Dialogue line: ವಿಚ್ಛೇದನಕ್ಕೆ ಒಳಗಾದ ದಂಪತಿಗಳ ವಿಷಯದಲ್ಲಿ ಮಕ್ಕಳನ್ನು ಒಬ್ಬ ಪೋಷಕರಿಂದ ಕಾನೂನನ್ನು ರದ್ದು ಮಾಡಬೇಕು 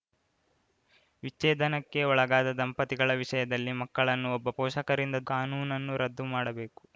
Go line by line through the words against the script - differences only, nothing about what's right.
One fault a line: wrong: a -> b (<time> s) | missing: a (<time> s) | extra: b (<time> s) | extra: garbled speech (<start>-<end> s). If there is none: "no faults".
no faults